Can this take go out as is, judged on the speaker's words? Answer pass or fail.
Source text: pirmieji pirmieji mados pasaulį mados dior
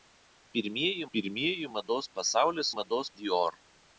pass